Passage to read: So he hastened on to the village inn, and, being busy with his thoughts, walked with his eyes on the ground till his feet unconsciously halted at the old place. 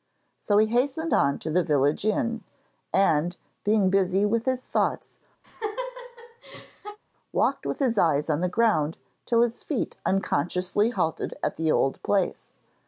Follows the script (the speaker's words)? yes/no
yes